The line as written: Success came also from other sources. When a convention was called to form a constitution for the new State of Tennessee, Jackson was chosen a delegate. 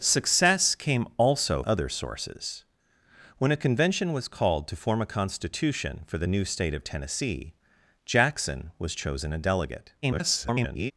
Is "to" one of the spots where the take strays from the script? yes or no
no